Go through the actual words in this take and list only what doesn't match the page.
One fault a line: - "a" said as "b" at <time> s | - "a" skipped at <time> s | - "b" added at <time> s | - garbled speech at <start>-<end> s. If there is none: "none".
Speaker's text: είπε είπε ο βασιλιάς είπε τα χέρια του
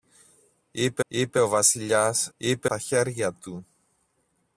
none